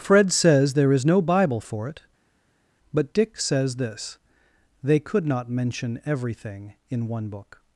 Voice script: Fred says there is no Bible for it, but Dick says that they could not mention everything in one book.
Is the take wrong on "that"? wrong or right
wrong